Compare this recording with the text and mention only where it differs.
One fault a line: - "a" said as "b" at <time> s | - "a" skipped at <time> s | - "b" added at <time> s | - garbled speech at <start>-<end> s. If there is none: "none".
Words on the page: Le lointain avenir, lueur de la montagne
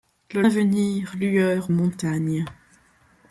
- "lointain" skipped at 0.4 s
- "de la" skipped at 1.7 s